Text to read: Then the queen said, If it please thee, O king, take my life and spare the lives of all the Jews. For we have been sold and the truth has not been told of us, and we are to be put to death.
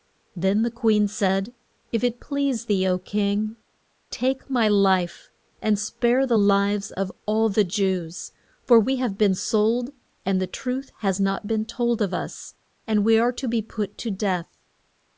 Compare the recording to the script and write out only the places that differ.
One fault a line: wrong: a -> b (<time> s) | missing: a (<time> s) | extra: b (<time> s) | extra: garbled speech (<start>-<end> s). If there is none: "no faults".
no faults